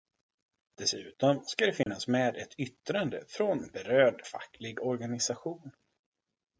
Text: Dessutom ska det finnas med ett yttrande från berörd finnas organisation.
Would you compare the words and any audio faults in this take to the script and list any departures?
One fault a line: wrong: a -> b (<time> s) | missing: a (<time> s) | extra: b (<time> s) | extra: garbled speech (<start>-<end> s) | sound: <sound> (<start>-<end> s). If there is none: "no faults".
sound: dropout (1.8-1.9 s)
wrong: finnas -> facklig (4.2 s)